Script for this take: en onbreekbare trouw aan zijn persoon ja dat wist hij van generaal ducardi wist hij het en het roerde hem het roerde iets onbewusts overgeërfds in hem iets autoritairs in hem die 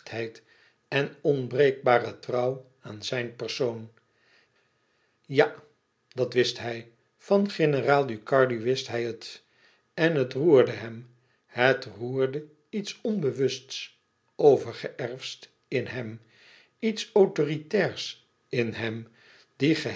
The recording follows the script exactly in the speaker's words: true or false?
true